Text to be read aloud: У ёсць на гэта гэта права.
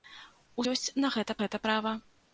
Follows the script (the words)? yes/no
yes